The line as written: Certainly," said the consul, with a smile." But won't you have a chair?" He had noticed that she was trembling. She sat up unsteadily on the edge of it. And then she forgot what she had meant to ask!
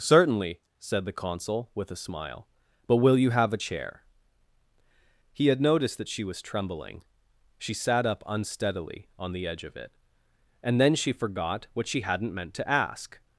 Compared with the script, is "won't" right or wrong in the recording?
wrong